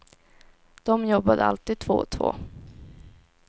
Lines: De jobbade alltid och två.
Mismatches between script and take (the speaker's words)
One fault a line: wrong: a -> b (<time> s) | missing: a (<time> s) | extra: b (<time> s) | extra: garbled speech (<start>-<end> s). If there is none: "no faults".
extra: två (1.8 s)